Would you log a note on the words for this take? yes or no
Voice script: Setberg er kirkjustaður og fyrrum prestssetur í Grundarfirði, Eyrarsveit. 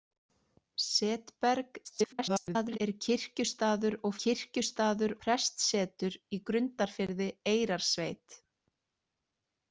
yes